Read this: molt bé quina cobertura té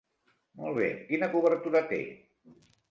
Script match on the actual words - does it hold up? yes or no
yes